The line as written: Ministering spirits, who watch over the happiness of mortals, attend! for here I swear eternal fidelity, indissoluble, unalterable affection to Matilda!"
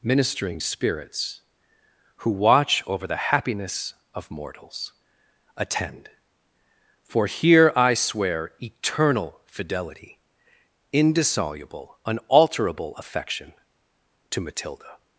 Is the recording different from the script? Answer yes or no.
no